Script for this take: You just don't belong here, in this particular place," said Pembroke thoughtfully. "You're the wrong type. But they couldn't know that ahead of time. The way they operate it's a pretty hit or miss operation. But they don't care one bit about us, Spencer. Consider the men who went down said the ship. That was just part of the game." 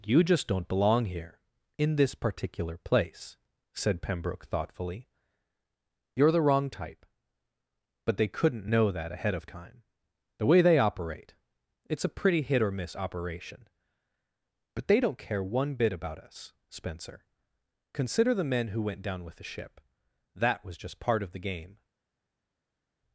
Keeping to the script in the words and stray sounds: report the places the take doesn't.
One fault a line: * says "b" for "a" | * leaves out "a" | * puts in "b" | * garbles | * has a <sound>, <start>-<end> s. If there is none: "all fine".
* says "with" for "said"